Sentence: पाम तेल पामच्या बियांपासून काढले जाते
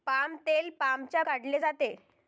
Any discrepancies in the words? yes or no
yes